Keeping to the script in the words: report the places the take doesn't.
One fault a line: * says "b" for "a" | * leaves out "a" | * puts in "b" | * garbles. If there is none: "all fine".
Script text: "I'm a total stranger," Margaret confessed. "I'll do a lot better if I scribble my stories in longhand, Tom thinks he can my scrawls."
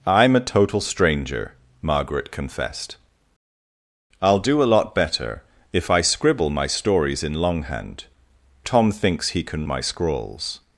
all fine